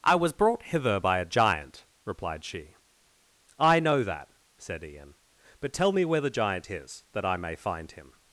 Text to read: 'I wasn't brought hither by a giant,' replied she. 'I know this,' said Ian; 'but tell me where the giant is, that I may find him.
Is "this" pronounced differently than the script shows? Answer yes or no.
yes